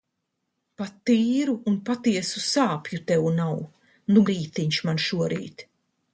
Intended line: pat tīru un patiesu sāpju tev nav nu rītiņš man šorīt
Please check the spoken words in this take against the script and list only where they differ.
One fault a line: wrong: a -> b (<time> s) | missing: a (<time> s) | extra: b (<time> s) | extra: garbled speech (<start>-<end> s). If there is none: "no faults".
no faults